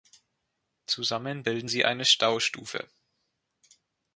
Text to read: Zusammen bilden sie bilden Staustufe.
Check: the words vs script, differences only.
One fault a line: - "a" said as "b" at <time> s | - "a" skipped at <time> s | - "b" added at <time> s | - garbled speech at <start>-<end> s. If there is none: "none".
- "bilden" said as "eine" at 1.9 s